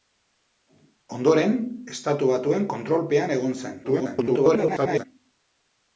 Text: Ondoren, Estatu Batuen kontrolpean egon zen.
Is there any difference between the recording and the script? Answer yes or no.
yes